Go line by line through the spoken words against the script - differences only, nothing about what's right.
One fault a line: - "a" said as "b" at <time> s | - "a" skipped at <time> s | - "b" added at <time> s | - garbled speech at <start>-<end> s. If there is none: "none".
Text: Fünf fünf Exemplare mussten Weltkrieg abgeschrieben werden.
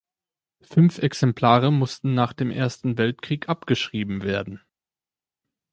- "fünf" skipped at 1.0 s
- "nach dem Ersten" added at 2.1 s